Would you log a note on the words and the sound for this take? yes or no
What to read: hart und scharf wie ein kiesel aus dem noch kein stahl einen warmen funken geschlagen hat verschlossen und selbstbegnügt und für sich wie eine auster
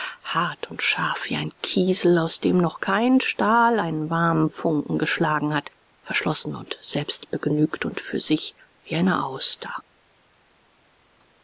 no